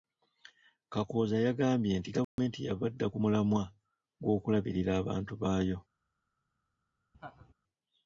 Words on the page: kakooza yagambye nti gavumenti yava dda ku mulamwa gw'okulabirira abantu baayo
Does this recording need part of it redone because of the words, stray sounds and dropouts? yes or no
yes